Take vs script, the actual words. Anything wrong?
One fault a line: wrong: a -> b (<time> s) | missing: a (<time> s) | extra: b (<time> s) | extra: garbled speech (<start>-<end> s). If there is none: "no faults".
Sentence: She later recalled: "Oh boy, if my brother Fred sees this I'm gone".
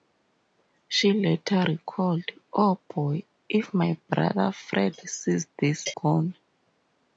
missing: I'm (5.9 s)